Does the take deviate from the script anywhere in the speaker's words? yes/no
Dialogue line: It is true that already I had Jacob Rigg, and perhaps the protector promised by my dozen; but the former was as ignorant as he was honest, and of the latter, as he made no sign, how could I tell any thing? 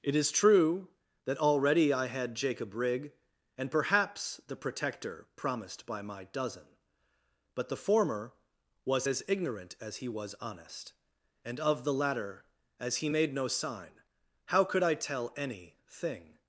no